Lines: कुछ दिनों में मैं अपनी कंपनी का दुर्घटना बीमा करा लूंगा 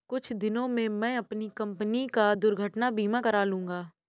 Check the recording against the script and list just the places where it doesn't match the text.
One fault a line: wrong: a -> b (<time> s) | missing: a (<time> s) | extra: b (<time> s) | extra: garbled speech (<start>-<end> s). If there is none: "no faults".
no faults